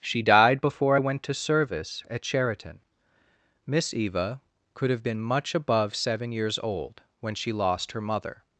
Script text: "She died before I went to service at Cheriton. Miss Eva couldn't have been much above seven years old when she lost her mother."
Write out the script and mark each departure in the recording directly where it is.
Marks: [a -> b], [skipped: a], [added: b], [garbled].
"She died before I went to service at Cheriton. Miss Eva [couldn't -> could] have been much above seven years old when she lost her mother."